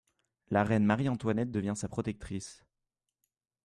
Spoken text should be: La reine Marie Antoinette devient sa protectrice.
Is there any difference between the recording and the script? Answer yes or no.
no